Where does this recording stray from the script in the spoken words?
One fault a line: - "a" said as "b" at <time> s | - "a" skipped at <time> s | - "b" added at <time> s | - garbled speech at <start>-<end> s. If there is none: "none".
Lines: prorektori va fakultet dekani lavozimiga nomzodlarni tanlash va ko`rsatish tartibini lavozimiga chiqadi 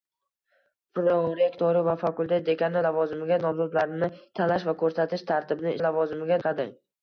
none